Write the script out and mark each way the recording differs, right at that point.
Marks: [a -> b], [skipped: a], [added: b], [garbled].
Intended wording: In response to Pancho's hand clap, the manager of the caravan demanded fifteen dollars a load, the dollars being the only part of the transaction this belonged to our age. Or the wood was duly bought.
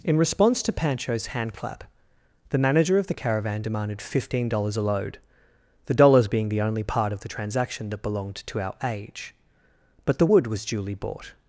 In response to Pancho's hand clap, the manager of the caravan demanded fifteen dollars a load, the dollars being the only part of the transaction [this -> that] belonged to our age. [Or -> But] the wood was duly bought.